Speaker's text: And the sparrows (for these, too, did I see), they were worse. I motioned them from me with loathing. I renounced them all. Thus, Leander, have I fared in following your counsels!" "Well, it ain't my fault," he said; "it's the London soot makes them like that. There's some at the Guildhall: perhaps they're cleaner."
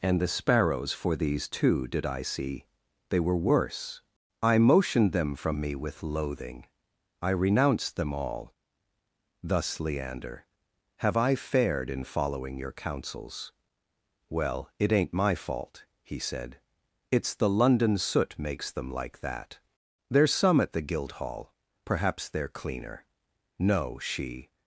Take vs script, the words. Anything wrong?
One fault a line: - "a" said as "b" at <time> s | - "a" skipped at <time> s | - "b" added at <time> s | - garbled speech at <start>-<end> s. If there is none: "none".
- "No she" added at 23.6 s